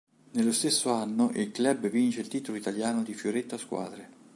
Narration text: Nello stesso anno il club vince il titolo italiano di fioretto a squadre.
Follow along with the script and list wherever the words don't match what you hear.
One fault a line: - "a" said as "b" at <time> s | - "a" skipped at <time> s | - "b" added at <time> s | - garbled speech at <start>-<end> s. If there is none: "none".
none